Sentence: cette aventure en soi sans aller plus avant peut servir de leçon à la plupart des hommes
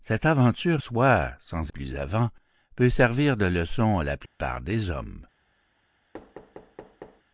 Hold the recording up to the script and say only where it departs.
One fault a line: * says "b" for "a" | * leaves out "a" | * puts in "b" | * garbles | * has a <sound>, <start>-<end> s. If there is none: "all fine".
* leaves out "en"
* leaves out "aller"
* has a dropout, 4.3-4.4 s
* has a thud, 6.1-7.2 s